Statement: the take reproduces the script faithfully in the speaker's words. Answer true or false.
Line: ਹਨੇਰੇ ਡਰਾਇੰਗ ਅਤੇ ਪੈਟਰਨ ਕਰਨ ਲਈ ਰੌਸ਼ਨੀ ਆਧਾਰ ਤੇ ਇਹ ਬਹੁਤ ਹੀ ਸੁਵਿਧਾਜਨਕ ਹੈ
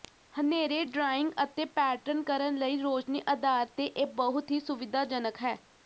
true